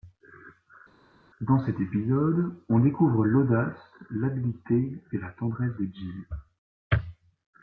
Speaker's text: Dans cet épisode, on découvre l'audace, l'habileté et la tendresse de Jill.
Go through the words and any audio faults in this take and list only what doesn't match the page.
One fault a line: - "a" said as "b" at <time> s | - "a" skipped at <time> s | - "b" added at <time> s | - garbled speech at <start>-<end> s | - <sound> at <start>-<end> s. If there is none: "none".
none